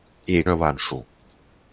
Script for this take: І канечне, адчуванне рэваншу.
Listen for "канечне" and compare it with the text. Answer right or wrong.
wrong